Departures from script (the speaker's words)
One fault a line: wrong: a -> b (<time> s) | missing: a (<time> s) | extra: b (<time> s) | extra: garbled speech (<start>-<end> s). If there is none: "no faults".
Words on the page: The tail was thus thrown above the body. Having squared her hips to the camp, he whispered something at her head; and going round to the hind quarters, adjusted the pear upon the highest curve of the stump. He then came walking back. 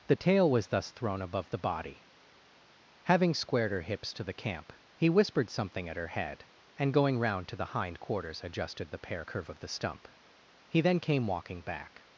missing: upon the highest (9.2 s)